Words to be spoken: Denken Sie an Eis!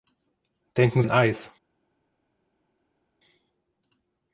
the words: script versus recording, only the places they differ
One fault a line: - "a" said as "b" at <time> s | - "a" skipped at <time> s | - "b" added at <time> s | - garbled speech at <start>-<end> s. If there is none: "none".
- "Sie" skipped at 1.0 s